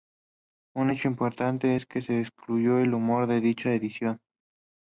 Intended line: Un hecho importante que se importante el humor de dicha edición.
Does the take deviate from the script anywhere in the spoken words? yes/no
yes